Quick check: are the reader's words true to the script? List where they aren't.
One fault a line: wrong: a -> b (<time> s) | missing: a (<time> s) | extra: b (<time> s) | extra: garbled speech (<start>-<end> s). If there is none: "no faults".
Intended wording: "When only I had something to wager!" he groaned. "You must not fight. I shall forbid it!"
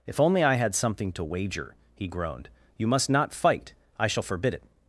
wrong: When -> If (0.1 s)